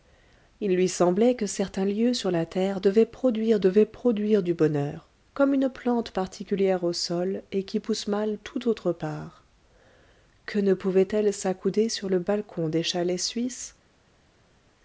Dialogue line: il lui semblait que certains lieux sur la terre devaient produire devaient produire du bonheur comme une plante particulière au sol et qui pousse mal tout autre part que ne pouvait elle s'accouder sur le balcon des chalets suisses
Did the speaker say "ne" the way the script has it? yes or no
yes